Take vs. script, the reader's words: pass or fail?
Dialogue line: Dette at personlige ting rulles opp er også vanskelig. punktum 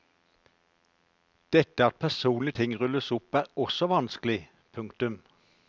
pass